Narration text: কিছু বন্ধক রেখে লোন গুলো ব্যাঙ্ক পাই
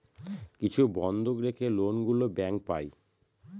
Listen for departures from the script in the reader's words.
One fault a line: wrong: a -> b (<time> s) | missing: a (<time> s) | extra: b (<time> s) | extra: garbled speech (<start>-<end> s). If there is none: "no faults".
no faults